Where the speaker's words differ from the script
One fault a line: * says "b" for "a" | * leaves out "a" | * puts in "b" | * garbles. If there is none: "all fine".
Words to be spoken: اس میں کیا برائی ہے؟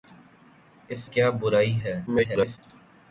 * leaves out "میں"
* garbles